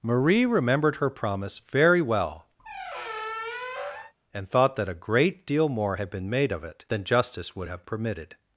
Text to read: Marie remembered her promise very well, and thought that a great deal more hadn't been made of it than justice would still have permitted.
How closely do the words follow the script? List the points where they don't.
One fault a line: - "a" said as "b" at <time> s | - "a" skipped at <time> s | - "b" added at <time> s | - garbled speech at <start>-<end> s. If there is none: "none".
- "hadn't" said as "had" at 5.9 s
- "still" skipped at 7.7 s